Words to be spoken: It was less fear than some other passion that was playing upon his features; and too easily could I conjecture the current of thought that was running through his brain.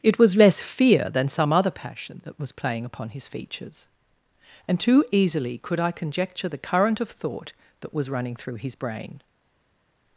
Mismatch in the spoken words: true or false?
false